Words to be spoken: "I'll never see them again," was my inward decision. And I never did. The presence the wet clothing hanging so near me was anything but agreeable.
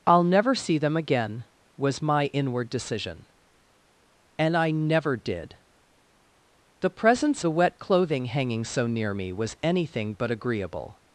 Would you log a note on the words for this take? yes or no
no